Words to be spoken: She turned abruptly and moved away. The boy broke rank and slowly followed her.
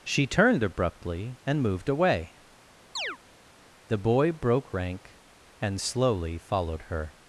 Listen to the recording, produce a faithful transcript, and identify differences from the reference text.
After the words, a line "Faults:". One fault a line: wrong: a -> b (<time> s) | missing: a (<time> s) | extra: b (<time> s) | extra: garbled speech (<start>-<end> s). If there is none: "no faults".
She turned abruptly and moved away. The boy broke rank and slowly followed her.
Faults:
no faults